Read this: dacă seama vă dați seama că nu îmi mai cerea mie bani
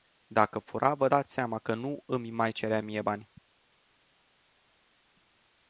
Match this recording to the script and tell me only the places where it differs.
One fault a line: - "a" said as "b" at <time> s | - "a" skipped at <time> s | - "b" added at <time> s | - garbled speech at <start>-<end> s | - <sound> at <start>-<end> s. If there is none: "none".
- "seama" said as "fura" at 0.6 s